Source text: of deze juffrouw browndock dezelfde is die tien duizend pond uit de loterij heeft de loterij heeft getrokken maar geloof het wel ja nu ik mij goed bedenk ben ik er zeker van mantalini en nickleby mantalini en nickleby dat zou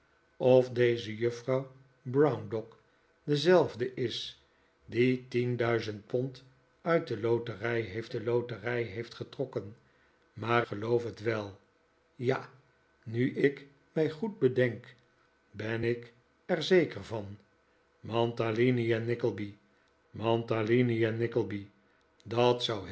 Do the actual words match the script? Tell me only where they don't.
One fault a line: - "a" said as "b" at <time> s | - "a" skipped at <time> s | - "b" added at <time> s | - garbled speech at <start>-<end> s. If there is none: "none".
none